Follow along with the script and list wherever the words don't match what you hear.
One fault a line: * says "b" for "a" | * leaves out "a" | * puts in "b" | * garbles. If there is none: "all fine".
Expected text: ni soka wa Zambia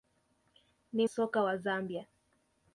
all fine